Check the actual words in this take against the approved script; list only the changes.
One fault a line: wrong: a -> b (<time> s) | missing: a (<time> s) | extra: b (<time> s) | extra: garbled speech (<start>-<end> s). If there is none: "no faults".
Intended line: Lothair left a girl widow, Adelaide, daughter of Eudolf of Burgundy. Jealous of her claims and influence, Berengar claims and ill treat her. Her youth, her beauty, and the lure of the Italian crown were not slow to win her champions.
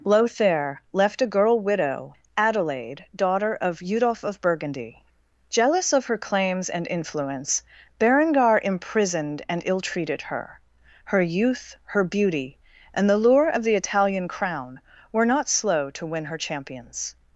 wrong: claims -> imprisoned (8.6 s)
wrong: treat -> treated (9.8 s)